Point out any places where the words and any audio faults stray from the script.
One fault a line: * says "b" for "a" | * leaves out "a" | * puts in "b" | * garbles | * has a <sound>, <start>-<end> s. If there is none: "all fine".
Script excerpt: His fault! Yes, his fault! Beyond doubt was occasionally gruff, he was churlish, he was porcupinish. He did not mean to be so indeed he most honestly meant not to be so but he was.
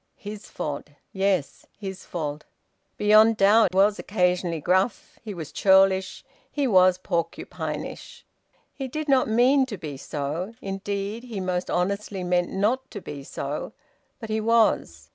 * has a dropout, 3.7-3.7 s